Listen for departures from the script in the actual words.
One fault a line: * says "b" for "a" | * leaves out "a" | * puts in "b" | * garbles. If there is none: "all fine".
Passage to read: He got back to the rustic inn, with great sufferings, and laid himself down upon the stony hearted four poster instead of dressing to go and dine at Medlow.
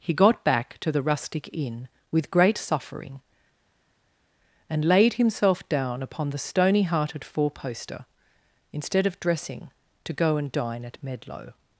* says "suffering" for "sufferings"